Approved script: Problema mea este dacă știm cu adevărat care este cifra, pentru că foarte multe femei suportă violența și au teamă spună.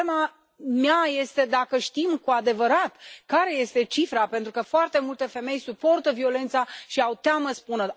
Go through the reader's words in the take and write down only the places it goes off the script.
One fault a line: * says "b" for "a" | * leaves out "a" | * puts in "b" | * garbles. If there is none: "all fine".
all fine